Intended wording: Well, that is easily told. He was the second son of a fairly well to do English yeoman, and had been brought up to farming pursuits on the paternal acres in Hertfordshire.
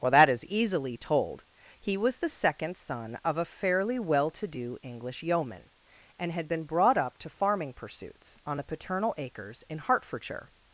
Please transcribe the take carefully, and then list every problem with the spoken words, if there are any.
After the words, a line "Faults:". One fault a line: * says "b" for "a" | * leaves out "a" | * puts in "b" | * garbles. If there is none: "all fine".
Well, that is easily told. He was the second son of a fairly well to do English yeoman, and had been brought up to farming pursuits on the paternal acres in Hertfordshire.
Faults:
all fine